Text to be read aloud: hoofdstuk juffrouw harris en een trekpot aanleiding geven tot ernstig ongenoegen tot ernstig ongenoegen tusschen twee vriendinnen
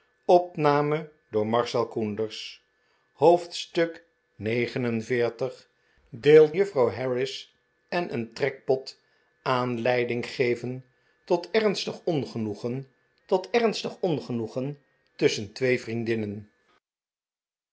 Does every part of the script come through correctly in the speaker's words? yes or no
yes